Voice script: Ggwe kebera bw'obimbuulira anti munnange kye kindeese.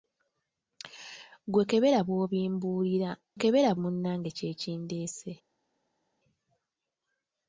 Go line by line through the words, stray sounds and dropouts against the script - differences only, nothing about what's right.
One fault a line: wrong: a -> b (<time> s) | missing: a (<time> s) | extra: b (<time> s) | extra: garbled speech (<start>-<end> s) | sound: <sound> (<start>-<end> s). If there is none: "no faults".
wrong: anti -> kebera (3.4 s)